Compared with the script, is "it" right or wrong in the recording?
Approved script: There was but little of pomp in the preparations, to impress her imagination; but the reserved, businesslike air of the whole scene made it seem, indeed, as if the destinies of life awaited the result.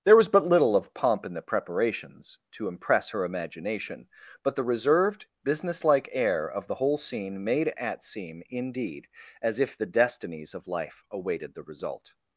wrong